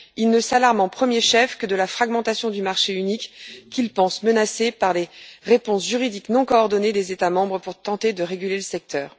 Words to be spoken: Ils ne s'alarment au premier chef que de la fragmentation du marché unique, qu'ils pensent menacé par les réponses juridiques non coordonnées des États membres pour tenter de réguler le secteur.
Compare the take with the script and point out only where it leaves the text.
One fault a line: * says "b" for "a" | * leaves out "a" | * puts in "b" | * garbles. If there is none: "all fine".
all fine